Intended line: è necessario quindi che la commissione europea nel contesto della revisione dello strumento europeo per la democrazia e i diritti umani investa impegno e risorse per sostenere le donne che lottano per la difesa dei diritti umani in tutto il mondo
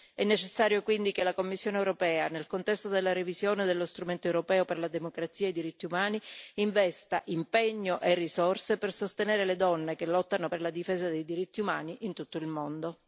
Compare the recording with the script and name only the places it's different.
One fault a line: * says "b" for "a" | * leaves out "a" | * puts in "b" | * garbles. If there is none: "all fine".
all fine